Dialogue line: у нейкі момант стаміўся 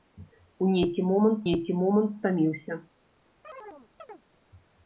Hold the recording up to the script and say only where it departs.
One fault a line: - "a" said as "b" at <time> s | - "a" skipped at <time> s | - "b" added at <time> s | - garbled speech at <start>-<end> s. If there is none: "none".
- "нейкі момант" added at 1.5 s